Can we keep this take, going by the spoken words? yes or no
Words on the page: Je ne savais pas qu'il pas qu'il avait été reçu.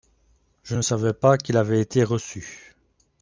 no